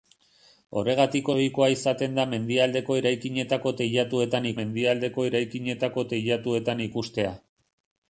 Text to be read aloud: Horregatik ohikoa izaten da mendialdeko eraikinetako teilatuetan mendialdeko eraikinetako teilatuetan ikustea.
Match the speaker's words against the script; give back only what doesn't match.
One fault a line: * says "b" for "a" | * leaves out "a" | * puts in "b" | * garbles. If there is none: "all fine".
all fine